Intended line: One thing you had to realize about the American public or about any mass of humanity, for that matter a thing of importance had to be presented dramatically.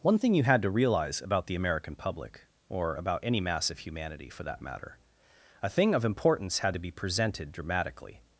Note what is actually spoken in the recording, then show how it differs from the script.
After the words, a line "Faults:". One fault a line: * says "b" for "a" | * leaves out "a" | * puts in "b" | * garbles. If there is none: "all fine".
One thing you had to realize about the American public or about any mass of humanity, for that matter a thing of importance had to be presented dramatically.
Faults:
all fine